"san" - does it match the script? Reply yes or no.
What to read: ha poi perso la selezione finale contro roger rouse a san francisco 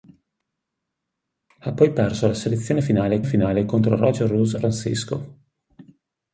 no